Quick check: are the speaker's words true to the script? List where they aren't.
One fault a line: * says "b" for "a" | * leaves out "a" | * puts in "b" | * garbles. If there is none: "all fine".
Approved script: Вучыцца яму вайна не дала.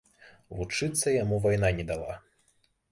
all fine